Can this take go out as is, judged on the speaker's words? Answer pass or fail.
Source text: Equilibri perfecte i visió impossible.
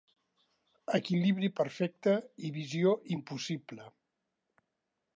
pass